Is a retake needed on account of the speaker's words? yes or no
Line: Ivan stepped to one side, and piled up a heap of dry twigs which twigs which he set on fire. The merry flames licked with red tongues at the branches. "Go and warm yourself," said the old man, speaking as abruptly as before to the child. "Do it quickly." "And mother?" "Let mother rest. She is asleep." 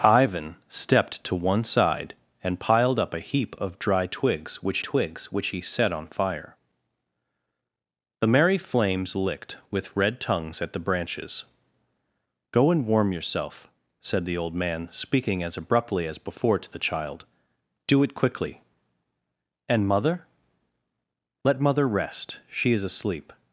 no